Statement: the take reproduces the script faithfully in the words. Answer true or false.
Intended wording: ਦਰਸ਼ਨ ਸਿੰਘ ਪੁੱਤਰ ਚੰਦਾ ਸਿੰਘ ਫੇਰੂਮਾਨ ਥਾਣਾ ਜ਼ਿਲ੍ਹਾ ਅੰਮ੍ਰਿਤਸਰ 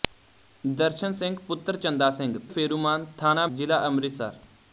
true